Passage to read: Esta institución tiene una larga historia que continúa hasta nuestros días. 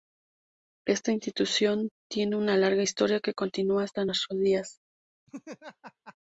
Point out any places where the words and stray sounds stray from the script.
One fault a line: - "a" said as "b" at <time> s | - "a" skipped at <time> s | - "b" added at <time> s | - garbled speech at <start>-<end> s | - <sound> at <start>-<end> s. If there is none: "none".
- laugh at 5.3-6.2 s